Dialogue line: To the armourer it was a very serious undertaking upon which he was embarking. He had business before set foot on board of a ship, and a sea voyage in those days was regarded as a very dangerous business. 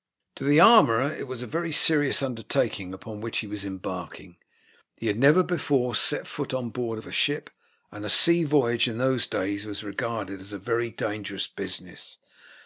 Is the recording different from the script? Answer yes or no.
yes